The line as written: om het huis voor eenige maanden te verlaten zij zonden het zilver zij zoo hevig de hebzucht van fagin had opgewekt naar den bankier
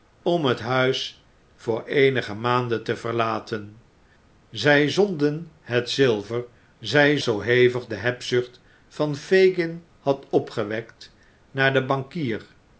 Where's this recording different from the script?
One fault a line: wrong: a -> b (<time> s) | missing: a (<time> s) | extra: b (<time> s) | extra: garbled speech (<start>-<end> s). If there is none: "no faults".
no faults